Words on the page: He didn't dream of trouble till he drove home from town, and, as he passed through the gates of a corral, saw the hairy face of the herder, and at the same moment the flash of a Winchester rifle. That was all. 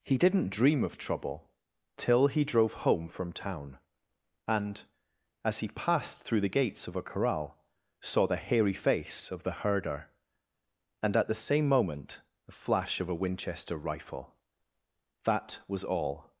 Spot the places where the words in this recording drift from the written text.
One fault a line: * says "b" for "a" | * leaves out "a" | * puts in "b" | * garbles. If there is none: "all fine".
all fine